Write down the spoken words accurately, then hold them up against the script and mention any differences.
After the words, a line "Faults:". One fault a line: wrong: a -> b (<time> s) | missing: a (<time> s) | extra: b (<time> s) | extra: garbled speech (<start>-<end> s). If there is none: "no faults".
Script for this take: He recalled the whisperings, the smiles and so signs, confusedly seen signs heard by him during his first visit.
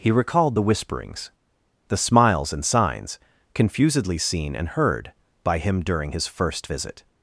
He recalled the whisperings, the smiles and signs, confusedly seen and heard by him during his first visit.
Faults:
missing: so (2.6 s)
wrong: signs -> and (4.6 s)